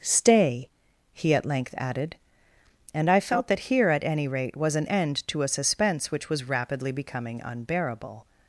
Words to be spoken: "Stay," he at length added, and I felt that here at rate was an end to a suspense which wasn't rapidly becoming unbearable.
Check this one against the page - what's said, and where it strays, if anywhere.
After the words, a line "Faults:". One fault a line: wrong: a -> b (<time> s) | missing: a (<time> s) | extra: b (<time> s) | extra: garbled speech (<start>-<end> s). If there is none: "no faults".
"Stay," he at length added, and I felt that here at any rate was an end to a suspense which was rapidly becoming unbearable.
Faults:
extra: any (4.0 s)
wrong: wasn't -> was (6.3 s)